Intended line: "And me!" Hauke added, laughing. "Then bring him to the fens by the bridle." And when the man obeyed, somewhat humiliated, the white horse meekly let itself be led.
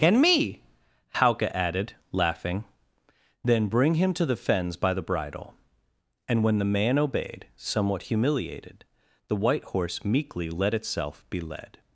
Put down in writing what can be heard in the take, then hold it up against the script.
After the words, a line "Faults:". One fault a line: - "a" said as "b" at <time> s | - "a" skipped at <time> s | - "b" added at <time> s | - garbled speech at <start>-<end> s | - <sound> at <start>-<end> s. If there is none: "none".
"And me!" Hauke added, laughing. "Then bring him to the fens by the bridle." And when the man obeyed, somewhat humiliated, the white horse meekly let itself be led.
Faults:
none